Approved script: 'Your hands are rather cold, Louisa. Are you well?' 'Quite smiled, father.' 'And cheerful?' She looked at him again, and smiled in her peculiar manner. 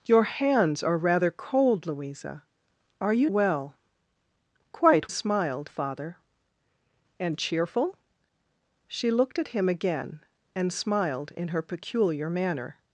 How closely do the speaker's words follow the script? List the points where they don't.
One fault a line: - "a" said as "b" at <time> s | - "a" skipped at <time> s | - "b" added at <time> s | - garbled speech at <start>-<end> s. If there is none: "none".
none